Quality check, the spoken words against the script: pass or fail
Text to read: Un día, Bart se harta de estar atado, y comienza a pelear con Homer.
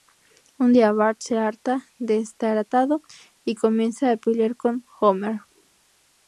pass